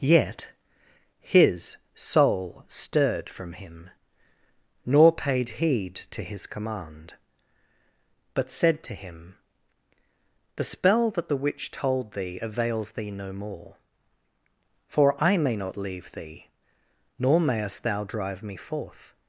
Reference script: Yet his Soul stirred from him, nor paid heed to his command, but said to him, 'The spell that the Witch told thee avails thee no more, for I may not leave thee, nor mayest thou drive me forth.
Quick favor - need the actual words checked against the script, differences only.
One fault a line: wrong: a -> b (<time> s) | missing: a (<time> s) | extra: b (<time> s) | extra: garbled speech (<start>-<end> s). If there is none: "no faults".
no faults